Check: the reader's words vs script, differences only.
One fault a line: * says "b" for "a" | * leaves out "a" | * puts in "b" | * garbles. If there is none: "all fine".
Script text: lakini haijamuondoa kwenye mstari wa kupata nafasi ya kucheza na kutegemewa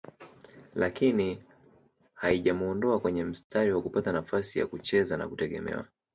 all fine